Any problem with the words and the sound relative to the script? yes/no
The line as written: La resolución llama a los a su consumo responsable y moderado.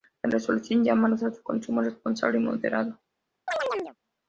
yes